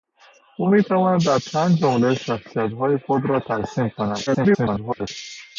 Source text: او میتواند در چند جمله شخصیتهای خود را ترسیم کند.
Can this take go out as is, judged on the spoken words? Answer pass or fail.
fail